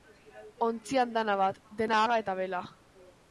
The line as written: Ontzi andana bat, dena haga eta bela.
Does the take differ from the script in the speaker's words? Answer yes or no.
no